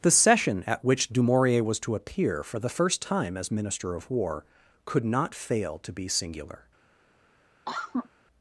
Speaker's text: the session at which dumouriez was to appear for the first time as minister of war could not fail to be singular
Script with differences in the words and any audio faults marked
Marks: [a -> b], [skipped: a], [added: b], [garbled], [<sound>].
the session at which dumouriez was to appear for the first time as minister of war could not fail to be singular [cough]